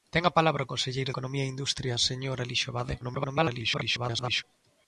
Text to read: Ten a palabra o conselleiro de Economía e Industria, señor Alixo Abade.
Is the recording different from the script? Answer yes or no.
yes